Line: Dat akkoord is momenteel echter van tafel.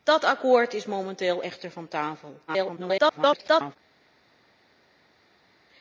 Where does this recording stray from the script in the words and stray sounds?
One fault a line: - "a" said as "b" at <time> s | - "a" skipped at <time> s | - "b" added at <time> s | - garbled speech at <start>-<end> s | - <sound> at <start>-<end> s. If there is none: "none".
- garbled speech at 2.5-3.8 s